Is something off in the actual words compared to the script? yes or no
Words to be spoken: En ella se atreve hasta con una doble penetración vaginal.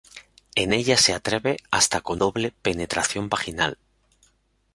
yes